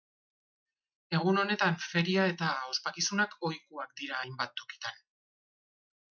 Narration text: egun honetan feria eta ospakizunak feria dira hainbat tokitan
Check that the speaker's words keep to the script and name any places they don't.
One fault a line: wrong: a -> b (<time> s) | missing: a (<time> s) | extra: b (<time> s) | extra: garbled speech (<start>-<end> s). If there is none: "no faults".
wrong: feria -> ohikoak (3.5 s)